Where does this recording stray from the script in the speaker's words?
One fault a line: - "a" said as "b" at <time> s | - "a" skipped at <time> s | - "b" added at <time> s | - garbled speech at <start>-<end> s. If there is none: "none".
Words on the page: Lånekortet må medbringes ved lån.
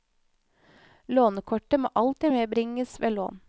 - "alltid" added at 1.9 s